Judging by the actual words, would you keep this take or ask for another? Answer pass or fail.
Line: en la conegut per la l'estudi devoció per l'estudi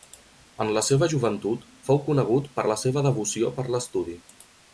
fail